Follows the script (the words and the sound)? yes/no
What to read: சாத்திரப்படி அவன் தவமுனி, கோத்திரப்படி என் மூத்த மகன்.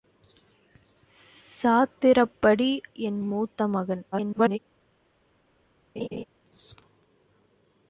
no